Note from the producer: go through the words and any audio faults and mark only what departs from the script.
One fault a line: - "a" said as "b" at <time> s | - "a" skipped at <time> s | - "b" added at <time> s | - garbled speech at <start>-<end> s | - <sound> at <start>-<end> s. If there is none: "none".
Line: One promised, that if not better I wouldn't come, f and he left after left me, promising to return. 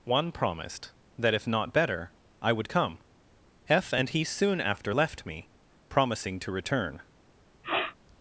- "wouldn't" said as "would" at 2.5 s
- "left" said as "soon" at 4.2 s
- sniff at 7.6-8.0 s